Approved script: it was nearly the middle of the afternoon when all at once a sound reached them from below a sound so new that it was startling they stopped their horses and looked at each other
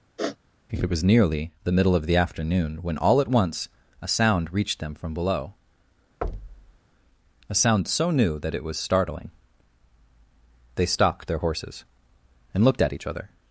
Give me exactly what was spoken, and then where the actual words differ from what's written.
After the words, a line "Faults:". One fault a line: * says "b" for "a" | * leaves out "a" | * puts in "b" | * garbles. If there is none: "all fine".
it was nearly the middle of the afternoon when all at once a sound reached them from below a sound so new that it was startling they stopped their horses and looked at each other
Faults:
all fine